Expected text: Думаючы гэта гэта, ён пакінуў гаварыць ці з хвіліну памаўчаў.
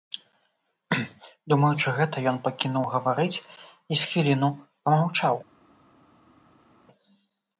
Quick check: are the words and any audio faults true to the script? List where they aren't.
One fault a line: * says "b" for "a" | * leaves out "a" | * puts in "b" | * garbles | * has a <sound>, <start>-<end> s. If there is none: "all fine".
* leaves out "гэта"
* says "і" for "ці"